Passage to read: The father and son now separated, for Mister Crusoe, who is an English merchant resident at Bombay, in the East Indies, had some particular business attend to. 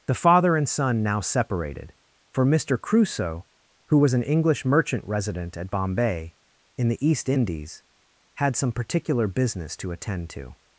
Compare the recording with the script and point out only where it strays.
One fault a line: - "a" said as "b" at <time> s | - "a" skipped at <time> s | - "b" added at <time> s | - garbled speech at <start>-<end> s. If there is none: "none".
- "is" said as "was" at 4.0 s
- "to" added at 9.8 s